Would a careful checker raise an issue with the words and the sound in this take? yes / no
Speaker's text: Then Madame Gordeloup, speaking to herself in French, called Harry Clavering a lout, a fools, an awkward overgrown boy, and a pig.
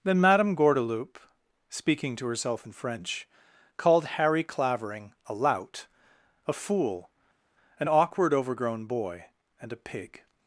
yes